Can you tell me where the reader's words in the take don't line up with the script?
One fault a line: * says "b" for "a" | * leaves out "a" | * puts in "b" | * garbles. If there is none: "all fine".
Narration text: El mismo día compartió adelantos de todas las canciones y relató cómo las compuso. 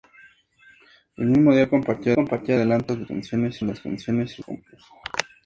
* puts in "compartió"
* says "canciones" for "todas"
* leaves out "relató cómo las"